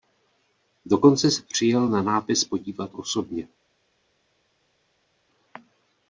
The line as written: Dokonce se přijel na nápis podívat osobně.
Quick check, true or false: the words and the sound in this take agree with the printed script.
true